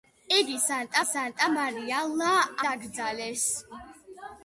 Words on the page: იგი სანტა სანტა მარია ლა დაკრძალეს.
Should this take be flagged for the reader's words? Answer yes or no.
no